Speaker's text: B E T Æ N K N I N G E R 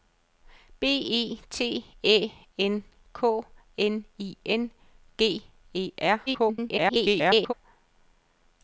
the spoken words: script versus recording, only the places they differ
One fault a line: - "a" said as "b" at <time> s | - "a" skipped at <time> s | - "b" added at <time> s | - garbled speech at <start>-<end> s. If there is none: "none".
- garbled speech at 6.3-7.5 s